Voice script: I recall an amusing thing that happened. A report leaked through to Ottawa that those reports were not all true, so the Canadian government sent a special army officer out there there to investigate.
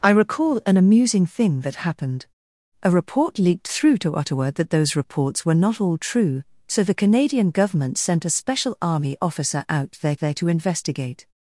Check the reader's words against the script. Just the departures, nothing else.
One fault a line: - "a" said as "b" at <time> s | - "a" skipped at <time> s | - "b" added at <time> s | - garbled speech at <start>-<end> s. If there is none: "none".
none